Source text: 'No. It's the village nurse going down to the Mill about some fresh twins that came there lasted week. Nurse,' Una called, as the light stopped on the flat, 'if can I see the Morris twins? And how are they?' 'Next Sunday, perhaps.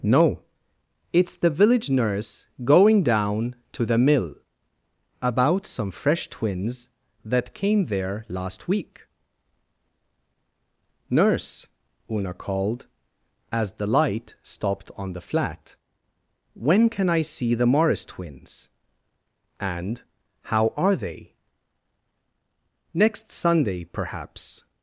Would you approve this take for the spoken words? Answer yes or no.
no